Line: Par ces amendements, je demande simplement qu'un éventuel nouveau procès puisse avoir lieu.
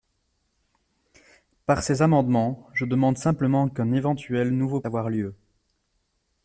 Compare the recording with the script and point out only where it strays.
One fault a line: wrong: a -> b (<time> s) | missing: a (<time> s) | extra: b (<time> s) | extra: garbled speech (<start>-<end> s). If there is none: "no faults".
missing: procès puisse (4.8 s)